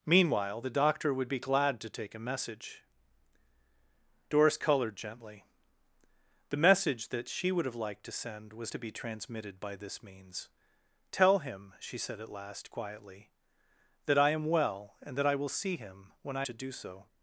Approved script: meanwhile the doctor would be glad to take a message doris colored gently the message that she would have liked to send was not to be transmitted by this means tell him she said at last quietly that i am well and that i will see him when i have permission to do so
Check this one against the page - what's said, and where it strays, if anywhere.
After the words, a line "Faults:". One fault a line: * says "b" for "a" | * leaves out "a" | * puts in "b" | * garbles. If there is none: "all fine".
meanwhile the doctor would be glad to take a message doris colored gently the message that she would have liked to send was to be transmitted by this means tell him she said at last quietly that i am well and that i will see him when i to do so
Faults:
* leaves out "not"
* leaves out "have permission"